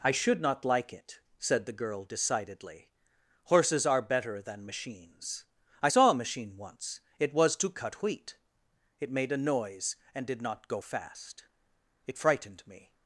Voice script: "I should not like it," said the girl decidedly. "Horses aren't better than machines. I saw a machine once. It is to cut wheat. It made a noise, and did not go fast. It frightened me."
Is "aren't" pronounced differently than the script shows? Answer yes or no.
yes